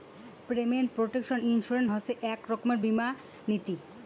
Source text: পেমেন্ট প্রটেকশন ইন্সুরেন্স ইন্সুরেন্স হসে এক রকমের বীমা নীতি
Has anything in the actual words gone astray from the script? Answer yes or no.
yes